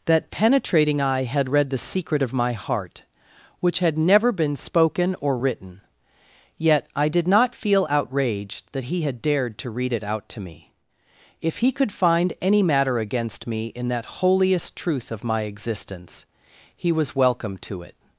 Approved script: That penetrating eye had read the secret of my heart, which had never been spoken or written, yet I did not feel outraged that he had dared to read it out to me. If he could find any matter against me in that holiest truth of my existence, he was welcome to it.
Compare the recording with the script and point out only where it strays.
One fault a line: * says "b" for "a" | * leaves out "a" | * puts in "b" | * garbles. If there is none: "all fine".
all fine